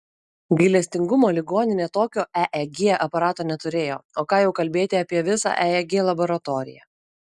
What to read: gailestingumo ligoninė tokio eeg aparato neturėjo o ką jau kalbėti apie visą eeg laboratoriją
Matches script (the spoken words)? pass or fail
pass